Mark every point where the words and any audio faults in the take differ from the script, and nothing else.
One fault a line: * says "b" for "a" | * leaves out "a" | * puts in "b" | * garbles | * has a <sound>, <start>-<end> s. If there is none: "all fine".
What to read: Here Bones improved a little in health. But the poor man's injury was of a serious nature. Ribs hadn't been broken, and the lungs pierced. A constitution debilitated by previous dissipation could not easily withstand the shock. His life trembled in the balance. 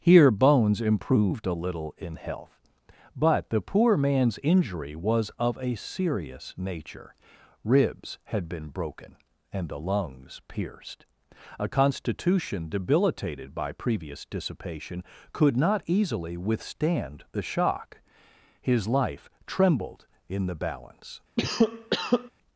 * says "had" for "hadn't"
* has a cough, 21.4-22.3 s